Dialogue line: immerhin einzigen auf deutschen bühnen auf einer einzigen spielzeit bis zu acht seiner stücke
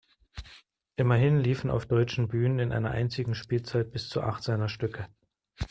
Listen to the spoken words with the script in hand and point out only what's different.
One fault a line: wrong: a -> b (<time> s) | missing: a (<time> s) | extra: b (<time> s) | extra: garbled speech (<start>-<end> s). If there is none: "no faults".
wrong: einzigen -> liefen (1.4 s)
wrong: auf -> in (2.6 s)